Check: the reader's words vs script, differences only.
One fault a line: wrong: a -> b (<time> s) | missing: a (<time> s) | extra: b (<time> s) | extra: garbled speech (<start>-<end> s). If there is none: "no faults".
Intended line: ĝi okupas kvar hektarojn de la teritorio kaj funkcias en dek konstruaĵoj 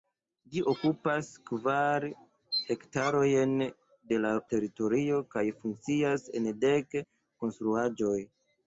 no faults